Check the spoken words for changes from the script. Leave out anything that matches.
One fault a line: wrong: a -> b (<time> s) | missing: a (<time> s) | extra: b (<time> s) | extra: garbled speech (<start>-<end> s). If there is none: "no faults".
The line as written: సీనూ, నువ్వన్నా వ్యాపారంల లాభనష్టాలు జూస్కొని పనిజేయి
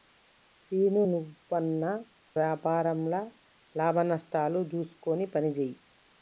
no faults